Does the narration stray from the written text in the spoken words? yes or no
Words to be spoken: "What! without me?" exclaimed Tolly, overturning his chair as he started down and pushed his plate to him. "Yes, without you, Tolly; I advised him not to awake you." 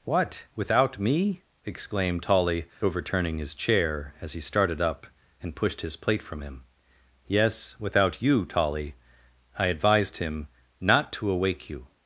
yes